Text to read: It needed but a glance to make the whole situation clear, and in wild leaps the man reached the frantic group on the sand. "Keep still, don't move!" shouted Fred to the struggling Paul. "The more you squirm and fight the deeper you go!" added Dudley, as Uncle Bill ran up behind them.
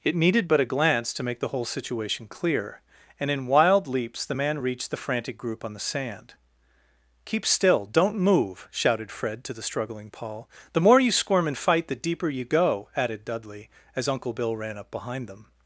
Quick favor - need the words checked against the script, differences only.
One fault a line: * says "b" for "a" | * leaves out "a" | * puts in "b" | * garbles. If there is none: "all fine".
all fine